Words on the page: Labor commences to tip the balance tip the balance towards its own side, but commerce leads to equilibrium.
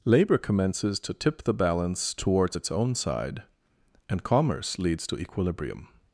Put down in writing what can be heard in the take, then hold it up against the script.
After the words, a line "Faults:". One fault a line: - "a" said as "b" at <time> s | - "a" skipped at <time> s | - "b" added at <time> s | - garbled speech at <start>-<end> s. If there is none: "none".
Labor commences to tip the balance towards its own side, and commerce leads to equilibrium.
Faults:
- "tip the balance" skipped at 2.1 s
- "but" said as "and" at 4.1 s